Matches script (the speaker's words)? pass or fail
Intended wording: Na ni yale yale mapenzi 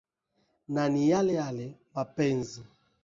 pass